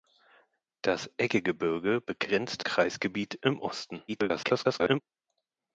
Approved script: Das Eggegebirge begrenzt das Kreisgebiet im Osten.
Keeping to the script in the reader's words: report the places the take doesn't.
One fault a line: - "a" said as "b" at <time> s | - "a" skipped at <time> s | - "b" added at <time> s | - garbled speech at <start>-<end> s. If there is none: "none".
- "das" skipped at 2.6 s
- garbled speech at 4.1-5.0 s